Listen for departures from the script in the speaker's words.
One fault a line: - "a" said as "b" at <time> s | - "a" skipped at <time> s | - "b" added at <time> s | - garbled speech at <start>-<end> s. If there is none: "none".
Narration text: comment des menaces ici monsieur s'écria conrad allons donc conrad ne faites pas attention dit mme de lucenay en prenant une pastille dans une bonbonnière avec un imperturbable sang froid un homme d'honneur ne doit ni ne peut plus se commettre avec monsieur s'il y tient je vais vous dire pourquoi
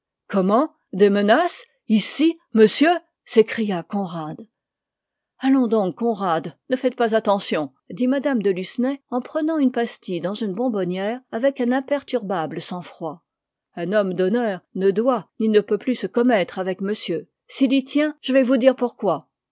none